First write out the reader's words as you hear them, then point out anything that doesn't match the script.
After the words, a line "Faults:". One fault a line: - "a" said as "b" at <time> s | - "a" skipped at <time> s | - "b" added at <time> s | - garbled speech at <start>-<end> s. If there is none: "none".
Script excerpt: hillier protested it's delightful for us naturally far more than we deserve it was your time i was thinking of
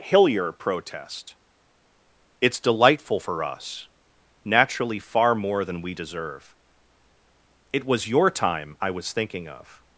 hillier protest it's delightful for us naturally far more than we deserve it was your time i was thinking of
Faults:
- "protested" said as "protest" at 0.5 s